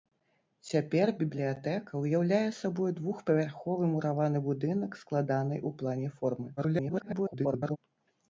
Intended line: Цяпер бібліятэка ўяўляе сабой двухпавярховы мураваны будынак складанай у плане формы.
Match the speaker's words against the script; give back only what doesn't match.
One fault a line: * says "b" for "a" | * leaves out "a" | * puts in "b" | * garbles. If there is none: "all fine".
* garbles